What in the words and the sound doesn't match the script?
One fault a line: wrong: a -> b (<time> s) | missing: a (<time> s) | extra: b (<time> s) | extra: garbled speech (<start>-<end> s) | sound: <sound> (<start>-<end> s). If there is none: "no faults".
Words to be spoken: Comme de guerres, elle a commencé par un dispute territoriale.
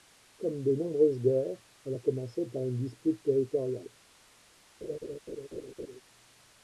extra: nombreuses (0.7 s)
wrong: un -> une (2.6 s)
sound: laugh (4.8-6.0 s)